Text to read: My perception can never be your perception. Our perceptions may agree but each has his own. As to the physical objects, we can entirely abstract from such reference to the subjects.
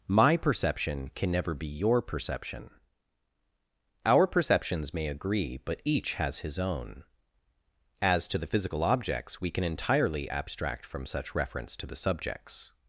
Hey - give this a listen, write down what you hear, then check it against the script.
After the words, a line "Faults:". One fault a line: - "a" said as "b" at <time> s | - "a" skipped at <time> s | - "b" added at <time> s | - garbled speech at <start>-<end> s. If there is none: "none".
My perception can never be your perception. Our perceptions may agree but each has his own. As to the physical objects, we can entirely abstract from such reference to the subjects.
Faults:
none